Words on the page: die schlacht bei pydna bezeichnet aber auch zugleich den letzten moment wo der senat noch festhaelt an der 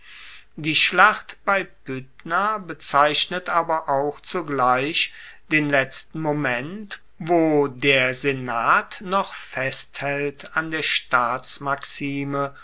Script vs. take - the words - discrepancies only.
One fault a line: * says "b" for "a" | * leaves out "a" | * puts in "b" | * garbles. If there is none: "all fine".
all fine